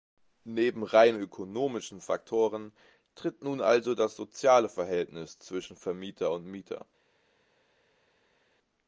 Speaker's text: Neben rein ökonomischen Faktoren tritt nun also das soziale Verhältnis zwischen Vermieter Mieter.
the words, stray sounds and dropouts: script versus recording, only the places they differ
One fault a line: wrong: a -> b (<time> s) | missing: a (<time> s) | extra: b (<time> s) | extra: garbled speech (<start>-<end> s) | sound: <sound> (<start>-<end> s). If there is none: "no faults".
extra: und (6.3 s)